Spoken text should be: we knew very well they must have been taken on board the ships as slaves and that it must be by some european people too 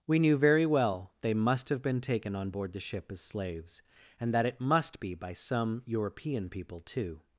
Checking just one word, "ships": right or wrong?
wrong